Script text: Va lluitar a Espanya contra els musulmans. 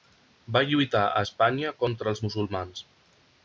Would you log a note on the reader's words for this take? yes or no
no